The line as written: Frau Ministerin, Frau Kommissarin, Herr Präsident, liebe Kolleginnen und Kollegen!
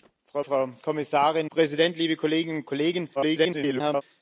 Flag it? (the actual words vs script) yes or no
yes